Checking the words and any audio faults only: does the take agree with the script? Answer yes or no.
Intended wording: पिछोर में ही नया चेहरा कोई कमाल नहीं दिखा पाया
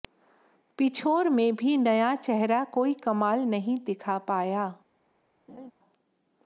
no